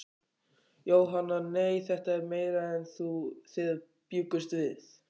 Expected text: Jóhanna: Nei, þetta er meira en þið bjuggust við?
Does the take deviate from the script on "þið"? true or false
false